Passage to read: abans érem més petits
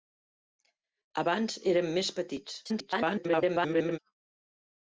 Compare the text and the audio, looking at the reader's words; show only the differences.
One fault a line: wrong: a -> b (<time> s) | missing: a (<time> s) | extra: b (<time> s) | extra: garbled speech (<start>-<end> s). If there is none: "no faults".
extra: garbled speech (2.6-4.0 s)